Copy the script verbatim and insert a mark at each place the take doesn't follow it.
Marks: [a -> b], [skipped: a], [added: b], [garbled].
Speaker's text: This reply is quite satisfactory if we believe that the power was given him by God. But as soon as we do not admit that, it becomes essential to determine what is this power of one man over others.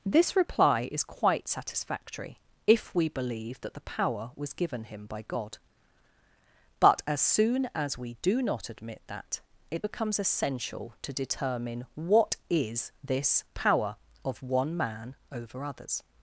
This reply is quite satisfactory if we believe that the power was given him by God. But as soon as we do not admit that, it becomes essential to determine what is this power of one man over others.